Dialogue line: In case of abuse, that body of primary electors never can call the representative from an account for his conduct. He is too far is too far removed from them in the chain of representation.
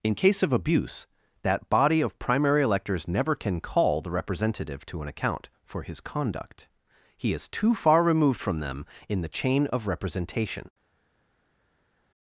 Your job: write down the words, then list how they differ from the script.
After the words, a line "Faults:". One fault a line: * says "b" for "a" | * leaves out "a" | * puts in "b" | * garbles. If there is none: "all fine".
In case of abuse, that body of primary electors never can call the representative to an account for his conduct. He is too far removed from them in the chain of representation.
Faults:
* says "to" for "from"
* leaves out "is too far"